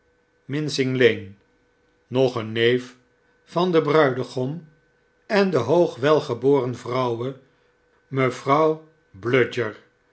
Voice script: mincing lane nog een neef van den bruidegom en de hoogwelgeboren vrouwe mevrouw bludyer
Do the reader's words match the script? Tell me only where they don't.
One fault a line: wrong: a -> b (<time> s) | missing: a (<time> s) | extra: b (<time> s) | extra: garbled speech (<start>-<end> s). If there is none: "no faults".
no faults